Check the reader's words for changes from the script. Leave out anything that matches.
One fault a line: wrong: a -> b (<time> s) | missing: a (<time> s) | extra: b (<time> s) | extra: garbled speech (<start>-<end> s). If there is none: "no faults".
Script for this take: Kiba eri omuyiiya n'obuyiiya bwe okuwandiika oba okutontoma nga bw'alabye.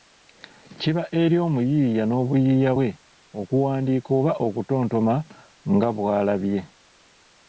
no faults